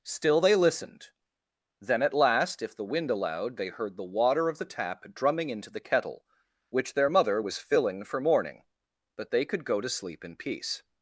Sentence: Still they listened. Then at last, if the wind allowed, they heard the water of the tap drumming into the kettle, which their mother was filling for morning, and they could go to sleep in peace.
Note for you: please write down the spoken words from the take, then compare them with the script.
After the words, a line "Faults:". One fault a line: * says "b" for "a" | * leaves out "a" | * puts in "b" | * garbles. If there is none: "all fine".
Still they listened. Then at last, if the wind allowed, they heard the water of the tap drumming into the kettle, which their mother was filling for morning, but they could go to sleep in peace.
Faults:
* says "but" for "and"